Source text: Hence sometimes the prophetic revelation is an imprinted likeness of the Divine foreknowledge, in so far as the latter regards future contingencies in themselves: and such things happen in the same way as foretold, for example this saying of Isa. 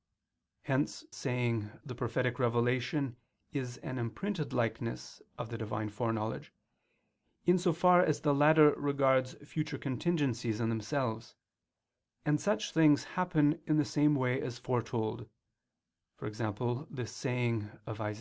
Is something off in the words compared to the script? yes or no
yes